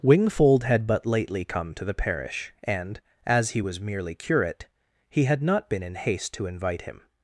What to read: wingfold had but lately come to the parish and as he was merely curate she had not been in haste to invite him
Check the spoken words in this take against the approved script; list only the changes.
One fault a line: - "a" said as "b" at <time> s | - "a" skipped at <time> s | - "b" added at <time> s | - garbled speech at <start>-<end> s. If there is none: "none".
- "she" said as "he" at 5.1 s